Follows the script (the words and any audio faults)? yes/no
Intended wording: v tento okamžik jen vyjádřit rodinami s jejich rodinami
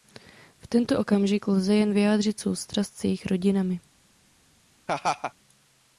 no